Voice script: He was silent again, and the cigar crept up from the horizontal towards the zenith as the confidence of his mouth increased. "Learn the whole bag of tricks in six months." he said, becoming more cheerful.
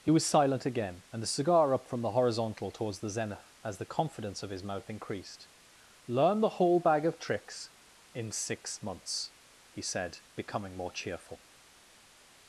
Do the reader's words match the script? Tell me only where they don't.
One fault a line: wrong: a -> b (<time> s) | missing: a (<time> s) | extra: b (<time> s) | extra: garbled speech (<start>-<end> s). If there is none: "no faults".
missing: crept (1.7 s)